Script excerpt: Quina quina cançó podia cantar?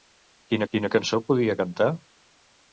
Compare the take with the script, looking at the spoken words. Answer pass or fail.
pass